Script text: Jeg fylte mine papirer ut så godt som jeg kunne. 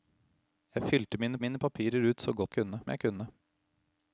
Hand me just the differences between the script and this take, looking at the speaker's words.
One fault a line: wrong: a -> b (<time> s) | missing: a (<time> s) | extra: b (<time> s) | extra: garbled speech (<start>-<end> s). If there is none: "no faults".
extra: mine (1.4 s)
wrong: som -> kunne (2.5 s)